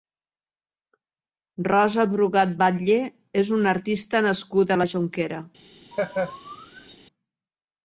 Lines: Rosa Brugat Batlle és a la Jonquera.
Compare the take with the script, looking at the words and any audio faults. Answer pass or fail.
fail